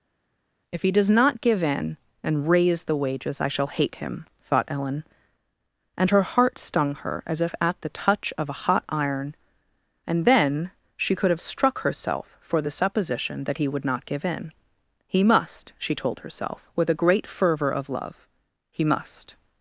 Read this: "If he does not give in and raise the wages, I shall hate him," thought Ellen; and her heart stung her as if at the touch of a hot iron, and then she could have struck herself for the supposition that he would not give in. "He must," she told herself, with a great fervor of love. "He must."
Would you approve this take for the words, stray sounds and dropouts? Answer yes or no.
yes